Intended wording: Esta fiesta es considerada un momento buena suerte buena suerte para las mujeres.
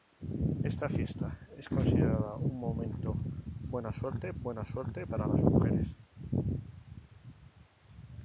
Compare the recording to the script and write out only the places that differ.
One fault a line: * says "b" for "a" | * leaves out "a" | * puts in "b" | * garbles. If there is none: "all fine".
all fine